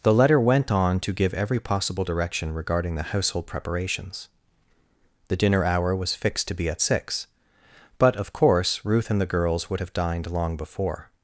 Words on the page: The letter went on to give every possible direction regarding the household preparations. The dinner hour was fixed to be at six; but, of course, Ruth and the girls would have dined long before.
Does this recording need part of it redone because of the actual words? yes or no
no